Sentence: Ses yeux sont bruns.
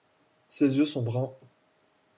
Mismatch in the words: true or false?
false